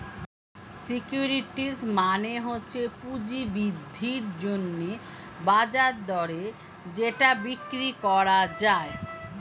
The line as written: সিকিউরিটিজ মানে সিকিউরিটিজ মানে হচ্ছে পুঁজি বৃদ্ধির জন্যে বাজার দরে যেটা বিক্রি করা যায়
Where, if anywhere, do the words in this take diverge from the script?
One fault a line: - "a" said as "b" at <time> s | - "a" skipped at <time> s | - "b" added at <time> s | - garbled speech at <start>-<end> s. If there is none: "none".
- "সিকিউরিটিজ মানে" skipped at 2.3 s